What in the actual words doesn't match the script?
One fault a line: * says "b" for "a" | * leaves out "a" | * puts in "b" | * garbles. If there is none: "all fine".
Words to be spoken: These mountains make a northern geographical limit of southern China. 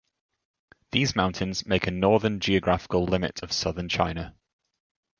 all fine